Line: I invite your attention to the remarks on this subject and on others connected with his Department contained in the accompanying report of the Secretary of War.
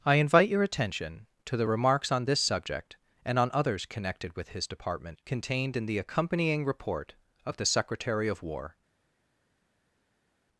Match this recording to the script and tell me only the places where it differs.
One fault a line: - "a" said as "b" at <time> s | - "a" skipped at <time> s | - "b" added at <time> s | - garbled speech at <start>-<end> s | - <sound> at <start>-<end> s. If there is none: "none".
none